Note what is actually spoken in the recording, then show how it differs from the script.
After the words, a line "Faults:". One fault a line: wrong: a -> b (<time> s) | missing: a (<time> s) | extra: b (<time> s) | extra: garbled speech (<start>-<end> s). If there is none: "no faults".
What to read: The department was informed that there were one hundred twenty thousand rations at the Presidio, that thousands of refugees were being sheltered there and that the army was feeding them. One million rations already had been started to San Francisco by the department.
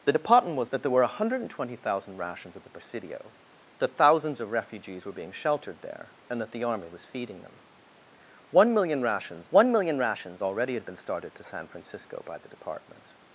The department was that there were one hundred twenty thousand rations at the Presidio, that thousands of refugees were being sheltered there and that the army was feeding them. One million rations one million rations already had been started to San Francisco by the department.
Faults:
missing: informed (0.7 s)
extra: one million rations (9.5 s)